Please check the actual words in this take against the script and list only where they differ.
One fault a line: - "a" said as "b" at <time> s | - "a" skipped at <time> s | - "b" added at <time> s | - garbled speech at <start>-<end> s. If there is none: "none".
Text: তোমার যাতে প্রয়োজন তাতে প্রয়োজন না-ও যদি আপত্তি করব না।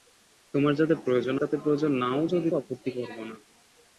none